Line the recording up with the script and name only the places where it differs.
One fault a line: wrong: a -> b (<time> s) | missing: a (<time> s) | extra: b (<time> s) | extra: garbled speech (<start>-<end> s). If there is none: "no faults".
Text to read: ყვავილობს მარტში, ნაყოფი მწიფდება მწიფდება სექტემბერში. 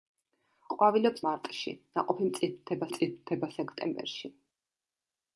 no faults